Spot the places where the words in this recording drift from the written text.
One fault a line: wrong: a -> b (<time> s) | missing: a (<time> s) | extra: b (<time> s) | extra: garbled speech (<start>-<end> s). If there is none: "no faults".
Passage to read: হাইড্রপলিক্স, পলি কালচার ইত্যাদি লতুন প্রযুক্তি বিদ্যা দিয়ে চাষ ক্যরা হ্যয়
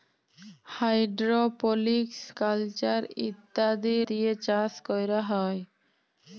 missing: পলি (2.2 s)
missing: লতুন প্রযুক্তি বিদ্যা (4.0 s)